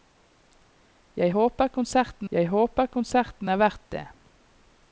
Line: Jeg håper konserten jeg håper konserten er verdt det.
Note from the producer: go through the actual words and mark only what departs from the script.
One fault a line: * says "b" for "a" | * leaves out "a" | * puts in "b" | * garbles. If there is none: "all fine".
all fine